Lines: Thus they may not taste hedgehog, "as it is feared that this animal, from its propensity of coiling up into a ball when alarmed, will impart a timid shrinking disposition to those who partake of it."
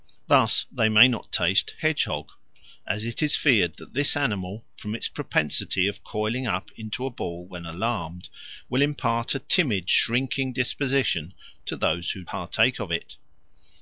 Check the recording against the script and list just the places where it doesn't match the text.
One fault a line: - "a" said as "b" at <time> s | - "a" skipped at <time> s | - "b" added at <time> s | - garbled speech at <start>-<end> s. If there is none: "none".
none